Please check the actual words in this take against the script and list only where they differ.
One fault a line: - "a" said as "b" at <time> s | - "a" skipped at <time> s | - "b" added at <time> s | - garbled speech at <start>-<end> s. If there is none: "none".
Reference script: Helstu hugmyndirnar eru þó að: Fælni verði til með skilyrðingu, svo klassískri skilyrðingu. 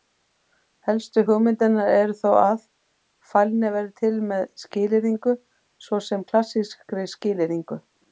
- "sem" added at 6.1 s